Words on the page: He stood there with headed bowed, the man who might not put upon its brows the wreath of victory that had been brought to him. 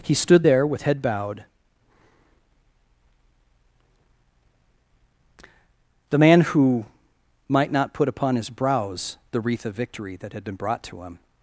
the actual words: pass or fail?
fail